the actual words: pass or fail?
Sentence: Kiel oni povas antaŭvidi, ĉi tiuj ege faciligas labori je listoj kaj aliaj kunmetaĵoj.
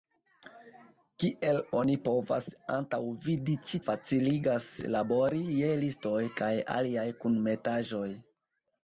fail